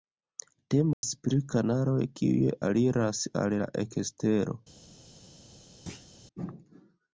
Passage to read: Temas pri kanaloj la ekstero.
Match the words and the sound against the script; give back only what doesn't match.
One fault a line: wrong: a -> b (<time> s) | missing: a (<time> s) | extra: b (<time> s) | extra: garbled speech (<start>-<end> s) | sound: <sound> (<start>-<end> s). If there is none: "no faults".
sound: dropout (0.9-1.0 s)
extra: kiuj aliras al (2.2 s)
sound: thud (5.9-6.1 s)